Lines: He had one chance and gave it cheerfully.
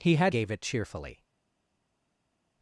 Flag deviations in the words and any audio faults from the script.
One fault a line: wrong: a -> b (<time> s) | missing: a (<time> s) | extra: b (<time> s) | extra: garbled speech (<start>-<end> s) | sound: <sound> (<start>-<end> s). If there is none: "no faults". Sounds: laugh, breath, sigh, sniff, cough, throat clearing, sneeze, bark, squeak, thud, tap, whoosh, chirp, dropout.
missing: one chance and (0.3 s)